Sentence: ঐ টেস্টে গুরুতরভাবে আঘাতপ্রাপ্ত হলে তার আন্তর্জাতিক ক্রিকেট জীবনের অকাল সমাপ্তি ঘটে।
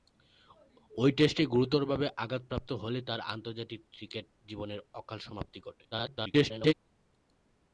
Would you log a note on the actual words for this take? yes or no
yes